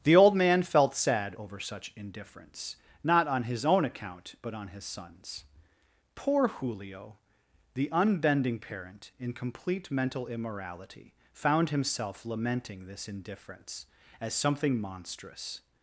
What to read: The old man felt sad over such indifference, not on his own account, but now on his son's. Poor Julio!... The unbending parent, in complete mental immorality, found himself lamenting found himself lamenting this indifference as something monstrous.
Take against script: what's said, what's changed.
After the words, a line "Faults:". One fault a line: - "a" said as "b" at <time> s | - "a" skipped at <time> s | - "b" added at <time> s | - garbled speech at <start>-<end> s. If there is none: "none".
The old man felt sad over such indifference, not on his own account, but on his son's. Poor Julio!... The unbending parent, in complete mental immorality, found himself lamenting this indifference as something monstrous.
Faults:
- "now" skipped at 4.5 s
- "found himself lamenting" skipped at 12.9 s